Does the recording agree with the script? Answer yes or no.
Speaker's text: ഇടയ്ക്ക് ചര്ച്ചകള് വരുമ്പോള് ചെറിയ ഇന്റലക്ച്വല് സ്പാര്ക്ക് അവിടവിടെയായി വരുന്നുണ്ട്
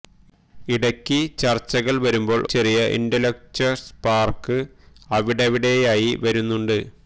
yes